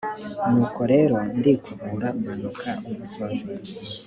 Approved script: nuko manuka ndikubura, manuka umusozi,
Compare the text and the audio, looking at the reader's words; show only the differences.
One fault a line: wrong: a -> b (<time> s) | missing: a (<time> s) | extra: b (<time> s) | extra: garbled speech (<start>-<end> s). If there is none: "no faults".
wrong: manuka -> rero (0.9 s)